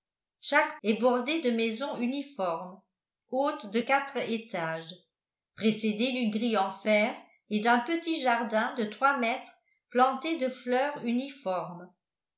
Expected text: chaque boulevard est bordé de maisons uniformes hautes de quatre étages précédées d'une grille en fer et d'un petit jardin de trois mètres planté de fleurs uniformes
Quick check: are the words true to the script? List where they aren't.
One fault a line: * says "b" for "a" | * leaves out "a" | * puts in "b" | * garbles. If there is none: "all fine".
* leaves out "boulevard"